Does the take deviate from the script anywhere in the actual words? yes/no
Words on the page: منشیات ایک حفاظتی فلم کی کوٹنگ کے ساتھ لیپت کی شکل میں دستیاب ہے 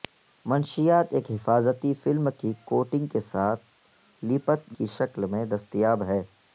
no